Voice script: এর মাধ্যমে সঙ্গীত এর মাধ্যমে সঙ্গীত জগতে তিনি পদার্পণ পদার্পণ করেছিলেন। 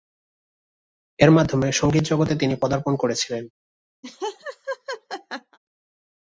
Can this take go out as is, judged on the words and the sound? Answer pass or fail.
fail